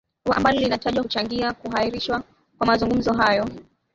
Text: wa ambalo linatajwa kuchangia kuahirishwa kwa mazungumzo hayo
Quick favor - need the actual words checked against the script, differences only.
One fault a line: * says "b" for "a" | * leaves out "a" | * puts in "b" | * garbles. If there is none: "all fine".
all fine